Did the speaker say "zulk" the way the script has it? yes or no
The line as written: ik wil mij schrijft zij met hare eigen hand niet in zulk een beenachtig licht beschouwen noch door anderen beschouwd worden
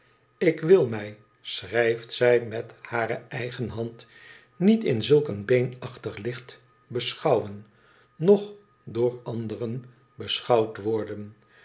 yes